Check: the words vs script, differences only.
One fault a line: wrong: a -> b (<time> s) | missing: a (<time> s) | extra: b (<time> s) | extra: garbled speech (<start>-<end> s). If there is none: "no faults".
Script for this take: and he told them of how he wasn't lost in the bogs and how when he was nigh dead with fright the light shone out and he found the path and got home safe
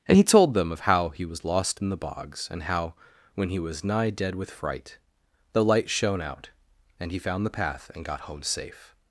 wrong: wasn't -> was (1.2 s)